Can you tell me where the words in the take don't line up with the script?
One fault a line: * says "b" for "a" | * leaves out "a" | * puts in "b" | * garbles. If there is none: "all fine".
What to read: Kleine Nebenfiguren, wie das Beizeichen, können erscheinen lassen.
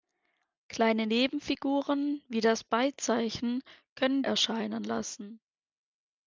all fine